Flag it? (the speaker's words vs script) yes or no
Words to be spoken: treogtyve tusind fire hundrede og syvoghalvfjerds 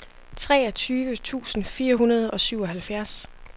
no